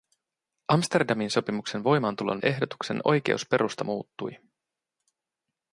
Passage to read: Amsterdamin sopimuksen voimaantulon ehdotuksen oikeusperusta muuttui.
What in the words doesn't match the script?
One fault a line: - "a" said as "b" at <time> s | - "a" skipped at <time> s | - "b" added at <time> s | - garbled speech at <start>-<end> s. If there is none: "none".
none